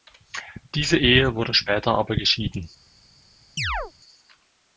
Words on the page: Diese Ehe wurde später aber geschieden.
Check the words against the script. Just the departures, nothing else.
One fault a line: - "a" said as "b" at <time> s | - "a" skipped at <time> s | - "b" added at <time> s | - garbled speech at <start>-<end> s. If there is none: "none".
none